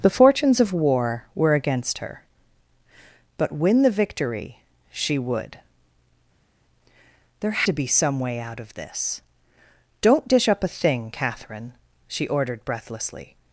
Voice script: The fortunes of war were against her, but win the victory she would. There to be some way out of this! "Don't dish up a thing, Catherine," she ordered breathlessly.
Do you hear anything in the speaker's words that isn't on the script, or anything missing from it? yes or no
no